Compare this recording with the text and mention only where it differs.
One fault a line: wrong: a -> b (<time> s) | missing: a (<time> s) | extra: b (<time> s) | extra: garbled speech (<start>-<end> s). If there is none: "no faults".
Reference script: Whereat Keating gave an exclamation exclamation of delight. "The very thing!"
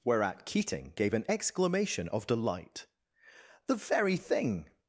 missing: exclamation (2.1 s)